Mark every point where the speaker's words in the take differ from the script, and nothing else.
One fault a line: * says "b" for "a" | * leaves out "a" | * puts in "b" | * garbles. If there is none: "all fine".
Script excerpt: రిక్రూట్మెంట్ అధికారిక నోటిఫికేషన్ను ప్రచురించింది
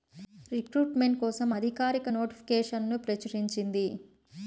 * puts in "కోసం"